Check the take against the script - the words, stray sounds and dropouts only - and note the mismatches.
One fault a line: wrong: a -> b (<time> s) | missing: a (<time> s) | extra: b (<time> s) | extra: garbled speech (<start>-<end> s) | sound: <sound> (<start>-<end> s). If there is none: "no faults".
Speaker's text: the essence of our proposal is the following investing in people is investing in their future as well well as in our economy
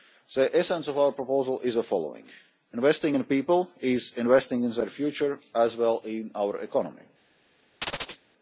missing: well (6.0 s)
sound: chirp (7.8-8.2 s)